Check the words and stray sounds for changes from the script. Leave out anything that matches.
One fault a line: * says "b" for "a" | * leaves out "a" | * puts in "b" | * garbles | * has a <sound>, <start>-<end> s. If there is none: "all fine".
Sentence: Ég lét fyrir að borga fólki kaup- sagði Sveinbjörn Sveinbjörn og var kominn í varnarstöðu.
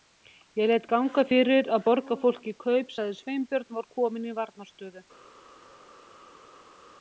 * puts in "ganga"
* leaves out "Sveinbjörn"